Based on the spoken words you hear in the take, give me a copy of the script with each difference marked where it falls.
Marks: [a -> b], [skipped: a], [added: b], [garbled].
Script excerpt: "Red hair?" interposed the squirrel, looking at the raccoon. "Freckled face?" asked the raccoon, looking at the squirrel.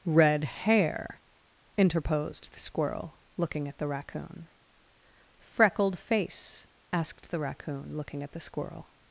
"Red hair?" interposed the squirrel, looking at the raccoon. "Freckled face?" asked the raccoon, looking at the squirrel.